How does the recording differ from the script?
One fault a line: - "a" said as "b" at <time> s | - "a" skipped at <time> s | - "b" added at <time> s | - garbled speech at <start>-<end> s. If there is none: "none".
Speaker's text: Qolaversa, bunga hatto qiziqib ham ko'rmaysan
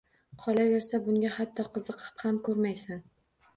none